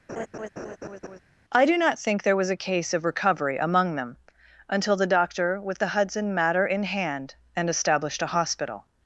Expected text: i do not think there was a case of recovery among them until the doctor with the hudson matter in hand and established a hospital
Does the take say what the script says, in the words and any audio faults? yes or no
no